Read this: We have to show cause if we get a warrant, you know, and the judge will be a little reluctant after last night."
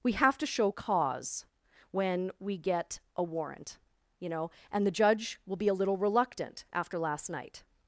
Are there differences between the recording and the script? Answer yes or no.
yes